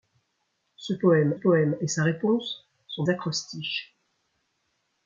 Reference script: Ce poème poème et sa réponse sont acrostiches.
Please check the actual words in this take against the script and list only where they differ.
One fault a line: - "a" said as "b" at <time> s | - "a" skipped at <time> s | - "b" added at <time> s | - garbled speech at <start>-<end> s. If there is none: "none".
none